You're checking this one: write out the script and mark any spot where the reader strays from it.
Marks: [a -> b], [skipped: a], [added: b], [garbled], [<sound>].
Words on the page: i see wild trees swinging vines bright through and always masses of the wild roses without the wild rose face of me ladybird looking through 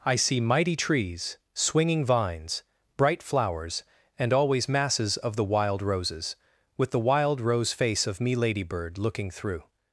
i see [wild -> mighty] trees swinging vines bright [through -> flowers] and always masses of the wild roses [without -> with] the wild rose face of me ladybird looking through